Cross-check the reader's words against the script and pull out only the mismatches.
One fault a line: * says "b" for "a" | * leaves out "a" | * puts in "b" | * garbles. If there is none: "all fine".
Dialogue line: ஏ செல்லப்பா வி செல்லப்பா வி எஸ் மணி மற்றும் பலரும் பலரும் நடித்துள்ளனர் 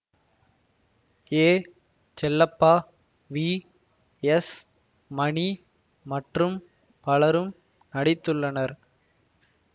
* leaves out "செல்லப்பா வி"
* leaves out "பலரும்"